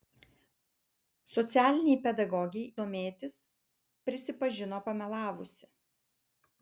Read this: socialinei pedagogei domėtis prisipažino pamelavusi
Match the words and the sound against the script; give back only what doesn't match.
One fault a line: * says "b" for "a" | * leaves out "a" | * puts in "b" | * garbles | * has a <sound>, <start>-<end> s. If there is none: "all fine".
all fine